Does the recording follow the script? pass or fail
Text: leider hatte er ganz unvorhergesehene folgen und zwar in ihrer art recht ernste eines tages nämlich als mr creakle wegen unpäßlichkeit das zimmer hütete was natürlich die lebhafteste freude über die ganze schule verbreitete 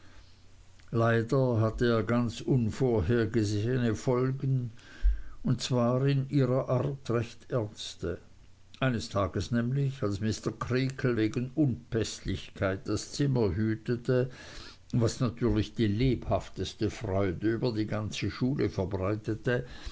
pass